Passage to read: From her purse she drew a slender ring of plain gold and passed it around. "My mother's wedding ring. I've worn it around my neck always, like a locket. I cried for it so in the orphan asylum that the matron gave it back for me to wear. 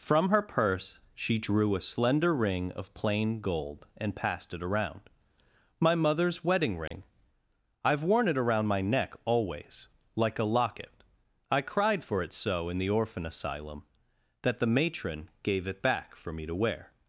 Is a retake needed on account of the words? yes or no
no